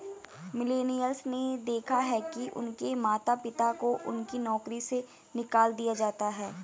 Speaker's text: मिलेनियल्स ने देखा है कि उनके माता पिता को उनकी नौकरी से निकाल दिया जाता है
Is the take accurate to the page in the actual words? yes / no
yes